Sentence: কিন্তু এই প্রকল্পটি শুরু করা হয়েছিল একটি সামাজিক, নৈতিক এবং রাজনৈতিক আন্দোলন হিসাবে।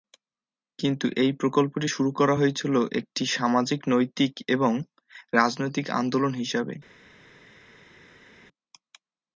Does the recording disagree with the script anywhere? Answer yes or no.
no